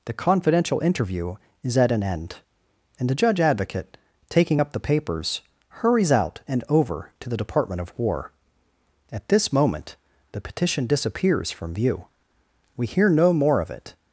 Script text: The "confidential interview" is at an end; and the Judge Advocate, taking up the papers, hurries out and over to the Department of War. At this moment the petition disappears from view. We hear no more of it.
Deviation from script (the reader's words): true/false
false